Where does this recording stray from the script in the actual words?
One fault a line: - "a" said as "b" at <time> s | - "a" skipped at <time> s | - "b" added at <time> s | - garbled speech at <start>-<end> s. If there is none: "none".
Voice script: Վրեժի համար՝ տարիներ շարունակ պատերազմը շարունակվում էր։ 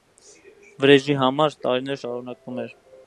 - "շարունակ պատերազմը" skipped at 2.0 s